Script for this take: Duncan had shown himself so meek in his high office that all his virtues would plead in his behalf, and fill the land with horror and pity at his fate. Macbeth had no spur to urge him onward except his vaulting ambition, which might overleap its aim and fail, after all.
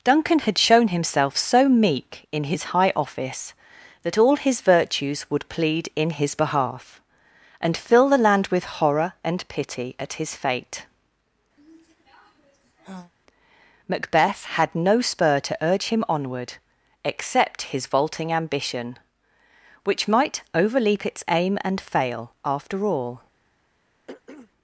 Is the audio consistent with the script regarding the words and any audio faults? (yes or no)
no